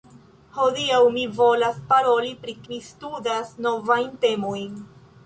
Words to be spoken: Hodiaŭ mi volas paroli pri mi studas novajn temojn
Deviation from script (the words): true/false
false